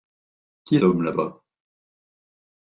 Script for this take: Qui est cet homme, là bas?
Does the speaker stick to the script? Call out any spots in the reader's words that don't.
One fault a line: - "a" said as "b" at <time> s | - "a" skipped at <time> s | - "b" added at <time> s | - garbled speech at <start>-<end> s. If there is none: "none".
- "cet" skipped at 0.8 s